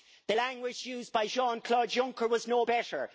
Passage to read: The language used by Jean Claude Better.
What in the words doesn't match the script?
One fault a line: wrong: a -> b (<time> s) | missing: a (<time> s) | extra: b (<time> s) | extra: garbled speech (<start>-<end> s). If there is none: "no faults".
extra: Juncker was no (1.9 s)